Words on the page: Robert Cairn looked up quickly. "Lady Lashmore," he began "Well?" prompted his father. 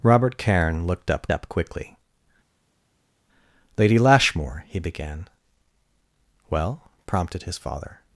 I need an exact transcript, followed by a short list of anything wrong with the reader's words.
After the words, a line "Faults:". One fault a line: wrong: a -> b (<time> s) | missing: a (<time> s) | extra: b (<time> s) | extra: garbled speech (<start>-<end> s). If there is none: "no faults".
Robert Cairn looked up up quickly. "Lady Lashmore," he began "Well?" prompted his father.
Faults:
extra: up (1.3 s)